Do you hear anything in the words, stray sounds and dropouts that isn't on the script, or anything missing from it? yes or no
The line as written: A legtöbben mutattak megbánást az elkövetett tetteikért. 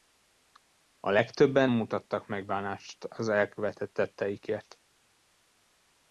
no